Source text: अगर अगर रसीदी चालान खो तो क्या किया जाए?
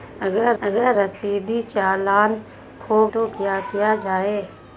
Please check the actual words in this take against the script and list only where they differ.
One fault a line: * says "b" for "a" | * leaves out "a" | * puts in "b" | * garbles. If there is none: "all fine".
all fine